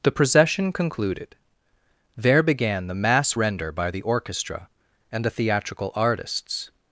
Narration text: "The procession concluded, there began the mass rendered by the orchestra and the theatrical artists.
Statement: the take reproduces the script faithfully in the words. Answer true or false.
false